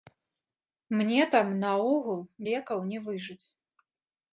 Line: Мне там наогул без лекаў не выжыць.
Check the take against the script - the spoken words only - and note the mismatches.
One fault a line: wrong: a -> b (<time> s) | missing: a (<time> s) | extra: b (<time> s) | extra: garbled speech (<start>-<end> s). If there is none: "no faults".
missing: без (2.2 s)